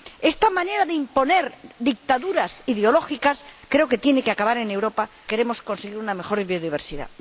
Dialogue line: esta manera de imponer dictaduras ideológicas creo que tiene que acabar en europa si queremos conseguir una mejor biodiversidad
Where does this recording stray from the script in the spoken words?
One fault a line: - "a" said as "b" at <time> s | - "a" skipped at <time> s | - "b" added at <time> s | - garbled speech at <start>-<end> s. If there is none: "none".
- "si" skipped at 5.1 s